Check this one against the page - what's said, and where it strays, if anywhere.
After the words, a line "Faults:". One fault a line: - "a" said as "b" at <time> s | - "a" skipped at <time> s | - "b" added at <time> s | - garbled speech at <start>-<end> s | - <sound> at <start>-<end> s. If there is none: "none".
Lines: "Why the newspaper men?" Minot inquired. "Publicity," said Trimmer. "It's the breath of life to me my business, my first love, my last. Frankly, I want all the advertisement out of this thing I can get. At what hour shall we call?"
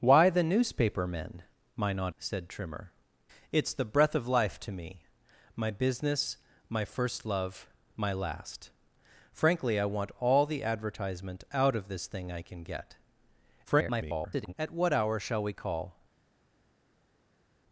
"Why the newspaper men?" Minot," said Trimmer. "It's the breath of life to me my business, my first love, my last. Frankly, I want all the advertisement out of this thing I can get. [garbled] At what hour shall we call?"
Faults:
- "inquired Publicity" skipped at 2.1 s
- garbled speech at 13.6-14.5 s